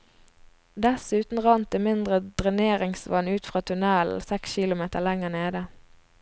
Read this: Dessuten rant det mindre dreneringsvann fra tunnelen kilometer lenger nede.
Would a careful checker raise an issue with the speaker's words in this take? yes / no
yes